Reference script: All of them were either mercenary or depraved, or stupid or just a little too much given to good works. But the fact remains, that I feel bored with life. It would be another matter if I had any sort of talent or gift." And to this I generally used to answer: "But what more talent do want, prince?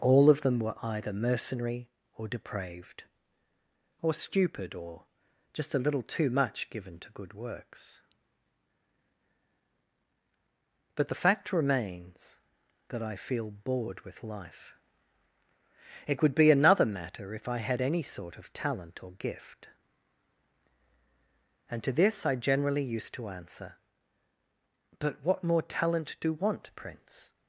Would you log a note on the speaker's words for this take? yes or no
no